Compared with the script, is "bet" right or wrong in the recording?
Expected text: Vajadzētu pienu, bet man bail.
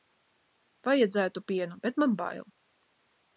right